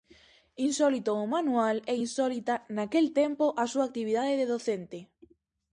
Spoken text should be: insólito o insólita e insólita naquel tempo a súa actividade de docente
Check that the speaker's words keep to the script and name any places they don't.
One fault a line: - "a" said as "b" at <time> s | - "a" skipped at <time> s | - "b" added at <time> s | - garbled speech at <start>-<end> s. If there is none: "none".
- "insólita" said as "manual" at 1.4 s